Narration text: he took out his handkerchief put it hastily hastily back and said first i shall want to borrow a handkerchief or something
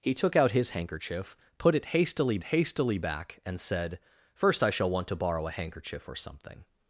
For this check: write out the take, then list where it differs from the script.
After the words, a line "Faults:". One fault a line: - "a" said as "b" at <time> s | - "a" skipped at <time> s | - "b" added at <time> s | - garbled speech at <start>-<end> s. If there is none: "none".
he took out his handkerchief put it hastily hastily back and said first i shall want to borrow a handkerchief or something
Faults:
none